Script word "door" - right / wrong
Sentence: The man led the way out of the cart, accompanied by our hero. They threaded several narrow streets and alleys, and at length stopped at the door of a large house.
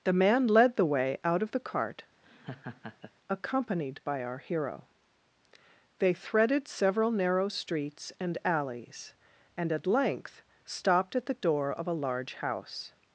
right